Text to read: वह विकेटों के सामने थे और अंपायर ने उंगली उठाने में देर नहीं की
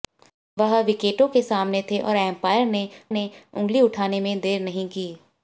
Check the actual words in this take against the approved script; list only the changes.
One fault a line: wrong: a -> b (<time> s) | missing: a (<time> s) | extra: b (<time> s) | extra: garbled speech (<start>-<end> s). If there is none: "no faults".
extra: ने (3.1 s)